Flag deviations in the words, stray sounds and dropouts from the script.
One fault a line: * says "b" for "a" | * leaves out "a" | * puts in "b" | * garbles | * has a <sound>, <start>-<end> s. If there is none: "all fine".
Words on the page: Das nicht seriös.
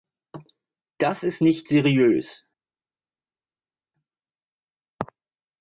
* puts in "ist"